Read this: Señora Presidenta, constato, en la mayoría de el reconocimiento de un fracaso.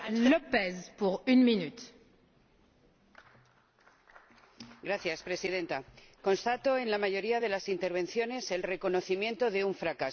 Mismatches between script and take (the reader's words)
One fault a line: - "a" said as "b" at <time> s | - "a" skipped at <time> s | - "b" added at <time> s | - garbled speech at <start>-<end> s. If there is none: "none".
- "las intervenciones" added at 7.5 s